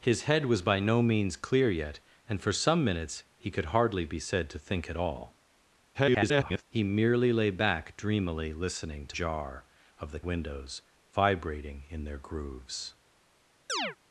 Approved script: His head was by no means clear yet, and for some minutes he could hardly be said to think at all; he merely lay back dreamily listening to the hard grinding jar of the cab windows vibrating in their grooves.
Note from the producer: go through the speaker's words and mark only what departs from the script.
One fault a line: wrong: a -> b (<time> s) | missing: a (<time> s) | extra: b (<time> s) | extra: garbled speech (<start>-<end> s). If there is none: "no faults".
extra: garbled speech (5.9-6.6 s)
missing: the hard grinding (9.2 s)
missing: cab (10.2 s)